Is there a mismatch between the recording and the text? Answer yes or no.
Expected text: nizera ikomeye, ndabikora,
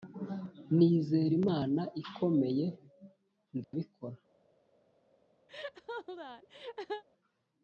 yes